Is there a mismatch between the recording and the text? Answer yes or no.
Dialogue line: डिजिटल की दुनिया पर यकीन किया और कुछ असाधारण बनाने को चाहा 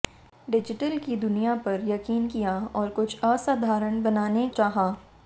yes